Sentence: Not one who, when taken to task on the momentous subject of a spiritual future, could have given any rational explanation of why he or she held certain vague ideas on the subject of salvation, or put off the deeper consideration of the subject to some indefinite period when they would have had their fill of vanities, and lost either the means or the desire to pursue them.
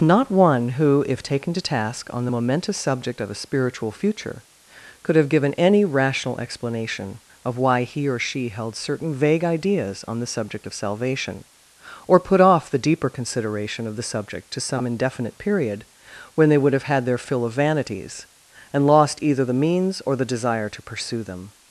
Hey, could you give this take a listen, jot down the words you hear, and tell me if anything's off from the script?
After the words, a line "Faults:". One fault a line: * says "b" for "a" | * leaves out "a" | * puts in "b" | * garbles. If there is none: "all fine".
Not one who, if taken to task on the momentous subject of a spiritual future, could have given any rational explanation of why he or she held certain vague ideas on the subject of salvation, or put off the deeper consideration of the subject to some indefinite period when they would have had their fill of vanities, and lost either the means or the desire to pursue them.
Faults:
* says "if" for "when"